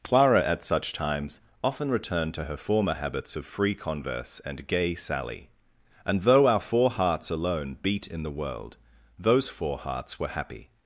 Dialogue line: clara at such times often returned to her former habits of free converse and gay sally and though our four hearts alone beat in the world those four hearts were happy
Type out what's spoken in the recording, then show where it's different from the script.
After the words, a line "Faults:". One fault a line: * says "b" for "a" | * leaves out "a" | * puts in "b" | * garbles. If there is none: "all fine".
clara at such times often returned to her former habits of free converse and gay sally and though our four hearts alone beat in the world those four hearts were happy
Faults:
all fine